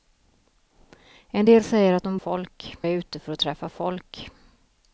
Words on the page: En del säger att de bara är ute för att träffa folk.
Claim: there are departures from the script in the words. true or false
true